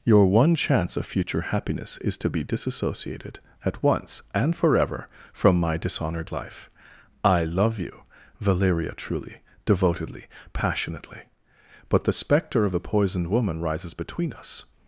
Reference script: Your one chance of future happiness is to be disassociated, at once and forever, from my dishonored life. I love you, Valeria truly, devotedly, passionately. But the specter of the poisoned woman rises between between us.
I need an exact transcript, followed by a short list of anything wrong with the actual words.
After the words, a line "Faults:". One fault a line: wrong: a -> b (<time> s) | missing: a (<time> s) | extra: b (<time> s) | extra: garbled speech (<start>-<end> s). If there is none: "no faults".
Your one chance of future happiness is to be disassociated, at once and forever, from my dishonored life. I love you, Valeria truly, devotedly, passionately. But the specter of the poisoned woman rises between us.
Faults:
missing: between (14.3 s)